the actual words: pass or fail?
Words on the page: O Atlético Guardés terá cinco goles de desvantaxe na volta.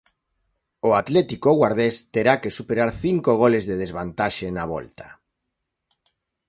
fail